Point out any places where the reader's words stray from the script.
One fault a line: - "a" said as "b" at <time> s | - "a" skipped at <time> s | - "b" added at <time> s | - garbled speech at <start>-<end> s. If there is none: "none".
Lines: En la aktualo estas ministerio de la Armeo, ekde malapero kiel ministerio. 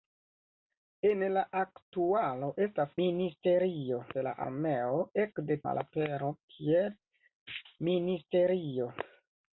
none